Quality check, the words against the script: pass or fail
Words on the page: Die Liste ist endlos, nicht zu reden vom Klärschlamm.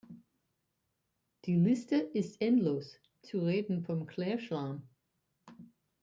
fail